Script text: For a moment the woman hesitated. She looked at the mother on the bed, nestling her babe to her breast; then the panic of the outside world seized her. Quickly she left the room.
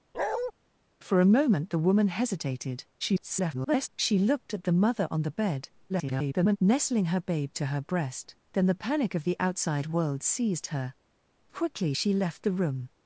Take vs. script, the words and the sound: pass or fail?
fail